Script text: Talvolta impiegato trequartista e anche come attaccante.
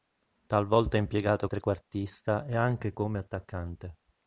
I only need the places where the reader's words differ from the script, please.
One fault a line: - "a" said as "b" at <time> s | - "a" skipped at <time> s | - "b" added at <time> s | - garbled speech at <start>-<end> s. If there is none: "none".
none